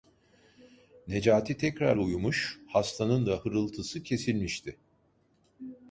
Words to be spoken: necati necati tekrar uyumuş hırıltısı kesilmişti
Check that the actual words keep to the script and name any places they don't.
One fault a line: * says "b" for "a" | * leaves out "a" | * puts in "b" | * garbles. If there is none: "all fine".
* leaves out "necati"
* puts in "hastanın da"